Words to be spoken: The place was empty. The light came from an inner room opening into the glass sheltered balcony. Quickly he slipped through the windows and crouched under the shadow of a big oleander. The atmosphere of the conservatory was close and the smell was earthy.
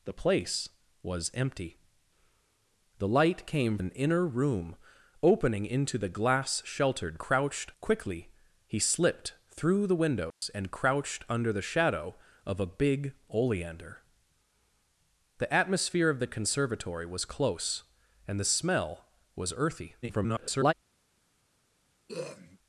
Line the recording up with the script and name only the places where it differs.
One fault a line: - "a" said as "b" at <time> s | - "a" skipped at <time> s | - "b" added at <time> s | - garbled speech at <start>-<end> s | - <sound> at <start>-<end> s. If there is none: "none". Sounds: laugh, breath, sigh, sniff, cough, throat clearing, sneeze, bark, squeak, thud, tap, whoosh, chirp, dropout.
- "from" skipped at 3.8 s
- "balcony" said as "crouched" at 7.2 s
- dropout at 10.3-10.4 s
- garbled speech at 20.0-20.7 s
- throat clearing at 22.1-22.6 s